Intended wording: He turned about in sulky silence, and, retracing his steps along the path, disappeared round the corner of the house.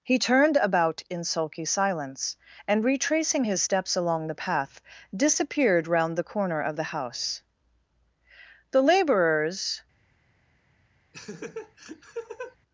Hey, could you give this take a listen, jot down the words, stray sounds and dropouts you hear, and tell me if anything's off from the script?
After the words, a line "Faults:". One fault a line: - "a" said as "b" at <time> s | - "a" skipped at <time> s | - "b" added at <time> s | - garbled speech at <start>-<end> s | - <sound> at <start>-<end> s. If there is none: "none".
He turned about in sulky silence, and, retracing his steps along the path, disappeared round the corner of the house. The laborers
Faults:
- "The laborers" added at 8.7 s
- laugh at 11.1-12.6 s